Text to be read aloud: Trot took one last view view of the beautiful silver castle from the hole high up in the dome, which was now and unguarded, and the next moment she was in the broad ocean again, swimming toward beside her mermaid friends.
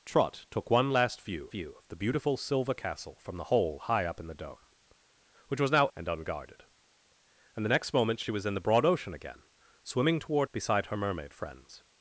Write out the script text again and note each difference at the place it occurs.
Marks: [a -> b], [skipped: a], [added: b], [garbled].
Trot took one last view view of the beautiful silver castle from the hole high up in the dome, which was now and unguarded, and the next moment she was in the broad ocean again, swimming toward beside her mermaid friends.